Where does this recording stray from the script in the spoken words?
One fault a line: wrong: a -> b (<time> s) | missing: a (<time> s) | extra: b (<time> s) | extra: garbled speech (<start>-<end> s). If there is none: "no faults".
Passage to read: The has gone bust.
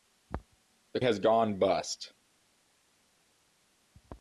no faults